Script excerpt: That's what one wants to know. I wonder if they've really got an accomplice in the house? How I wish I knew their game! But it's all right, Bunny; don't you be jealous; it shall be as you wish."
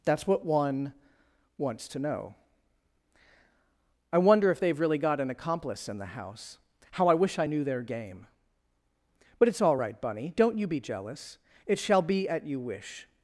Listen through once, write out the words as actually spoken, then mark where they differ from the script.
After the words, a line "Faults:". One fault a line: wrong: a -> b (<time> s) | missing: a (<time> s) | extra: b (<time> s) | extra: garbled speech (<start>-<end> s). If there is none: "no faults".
That's what one wants to know. I wonder if they've really got an accomplice in the house? How I wish I knew their game! But it's all right, Bunny; don't you be jealous; it shall be at you wish."
Faults:
wrong: as -> at (12.3 s)